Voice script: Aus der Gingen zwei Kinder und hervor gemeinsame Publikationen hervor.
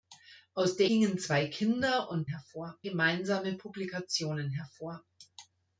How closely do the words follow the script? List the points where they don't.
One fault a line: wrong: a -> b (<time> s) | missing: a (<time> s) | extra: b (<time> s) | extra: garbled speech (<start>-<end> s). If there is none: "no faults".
no faults